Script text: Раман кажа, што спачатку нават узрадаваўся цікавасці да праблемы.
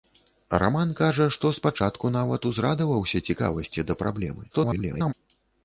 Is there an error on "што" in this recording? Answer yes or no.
no